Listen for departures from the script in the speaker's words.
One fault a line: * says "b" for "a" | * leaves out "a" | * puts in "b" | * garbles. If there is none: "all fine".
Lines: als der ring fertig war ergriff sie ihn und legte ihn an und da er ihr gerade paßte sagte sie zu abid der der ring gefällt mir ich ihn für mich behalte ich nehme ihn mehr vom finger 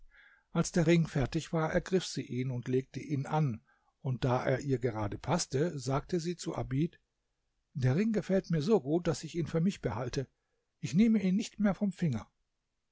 * leaves out "der"
* puts in "so gut daß"
* puts in "nicht"